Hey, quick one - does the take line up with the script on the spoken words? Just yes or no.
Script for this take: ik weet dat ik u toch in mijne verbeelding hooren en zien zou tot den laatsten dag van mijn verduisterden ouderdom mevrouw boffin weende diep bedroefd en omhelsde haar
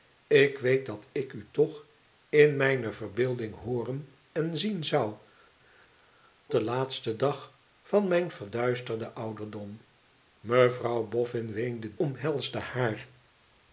no